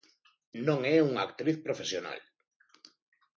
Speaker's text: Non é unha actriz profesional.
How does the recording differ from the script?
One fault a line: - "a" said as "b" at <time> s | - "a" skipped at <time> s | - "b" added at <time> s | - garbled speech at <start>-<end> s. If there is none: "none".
none